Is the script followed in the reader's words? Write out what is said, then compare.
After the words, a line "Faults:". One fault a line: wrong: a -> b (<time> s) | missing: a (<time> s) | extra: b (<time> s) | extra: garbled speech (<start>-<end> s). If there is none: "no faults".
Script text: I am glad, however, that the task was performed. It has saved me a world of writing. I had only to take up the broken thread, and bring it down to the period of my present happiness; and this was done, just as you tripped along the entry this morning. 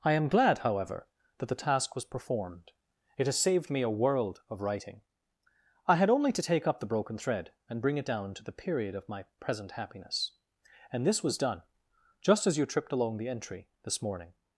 I am glad, however, that the task was performed. It has saved me a world of writing. I had only to take up the broken thread, and bring it down to the period of my present happiness; and this was done, just as you tripped along the entry this morning.
Faults:
no faults